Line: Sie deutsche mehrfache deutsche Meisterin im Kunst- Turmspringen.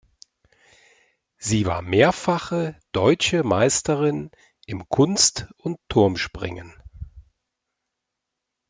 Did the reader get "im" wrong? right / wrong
right